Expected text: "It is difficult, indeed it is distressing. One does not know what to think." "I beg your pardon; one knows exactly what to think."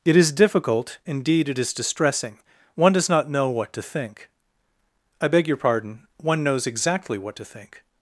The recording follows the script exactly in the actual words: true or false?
true